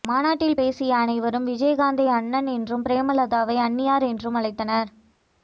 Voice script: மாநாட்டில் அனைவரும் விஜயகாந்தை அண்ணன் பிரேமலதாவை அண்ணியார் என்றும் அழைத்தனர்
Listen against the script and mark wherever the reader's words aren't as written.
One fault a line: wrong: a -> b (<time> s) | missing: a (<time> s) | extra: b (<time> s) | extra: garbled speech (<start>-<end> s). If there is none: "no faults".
extra: பேசிய (0.5 s)
extra: என்றும் (2.5 s)